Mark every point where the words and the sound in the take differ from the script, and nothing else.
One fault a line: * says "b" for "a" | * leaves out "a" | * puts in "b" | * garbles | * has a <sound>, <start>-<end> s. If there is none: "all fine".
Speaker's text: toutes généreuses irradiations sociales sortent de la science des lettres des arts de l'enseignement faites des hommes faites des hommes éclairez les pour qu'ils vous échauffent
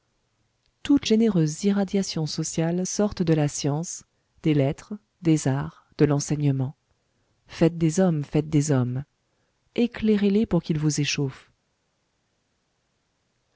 all fine